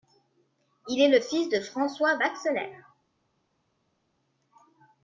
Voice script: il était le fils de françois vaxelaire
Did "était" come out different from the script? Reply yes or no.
yes